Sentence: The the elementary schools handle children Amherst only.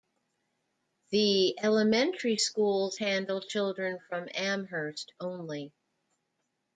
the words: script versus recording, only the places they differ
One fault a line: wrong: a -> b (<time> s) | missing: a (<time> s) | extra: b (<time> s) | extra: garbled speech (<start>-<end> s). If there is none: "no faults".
missing: the (1.6 s)
extra: from (4.0 s)